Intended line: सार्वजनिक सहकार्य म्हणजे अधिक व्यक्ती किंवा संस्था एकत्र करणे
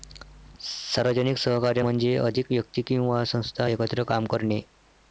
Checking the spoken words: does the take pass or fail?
fail